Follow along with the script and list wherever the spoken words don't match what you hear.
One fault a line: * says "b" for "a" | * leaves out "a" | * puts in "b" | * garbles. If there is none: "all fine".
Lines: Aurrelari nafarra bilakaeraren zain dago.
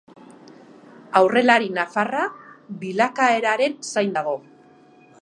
all fine